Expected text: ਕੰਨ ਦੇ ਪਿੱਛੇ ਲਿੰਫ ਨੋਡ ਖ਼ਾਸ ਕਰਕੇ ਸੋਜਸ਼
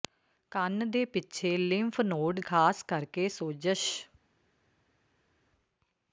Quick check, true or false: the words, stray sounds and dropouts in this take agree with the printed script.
true